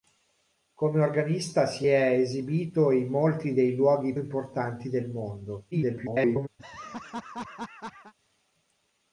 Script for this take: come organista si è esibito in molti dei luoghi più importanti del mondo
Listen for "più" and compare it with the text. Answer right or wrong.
wrong